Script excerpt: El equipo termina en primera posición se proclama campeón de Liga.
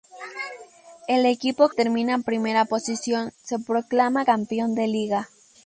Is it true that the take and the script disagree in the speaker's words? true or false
false